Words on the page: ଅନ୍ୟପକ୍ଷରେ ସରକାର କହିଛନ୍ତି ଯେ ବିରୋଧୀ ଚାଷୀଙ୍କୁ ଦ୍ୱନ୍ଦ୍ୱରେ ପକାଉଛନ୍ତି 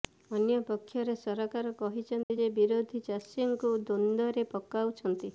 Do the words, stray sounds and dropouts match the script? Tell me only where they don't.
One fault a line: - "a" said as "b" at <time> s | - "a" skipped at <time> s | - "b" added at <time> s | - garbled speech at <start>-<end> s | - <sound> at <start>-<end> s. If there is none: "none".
- dropout at 2.2-2.3 s